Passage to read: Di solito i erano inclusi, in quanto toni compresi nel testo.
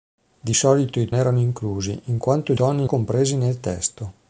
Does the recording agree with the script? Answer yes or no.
yes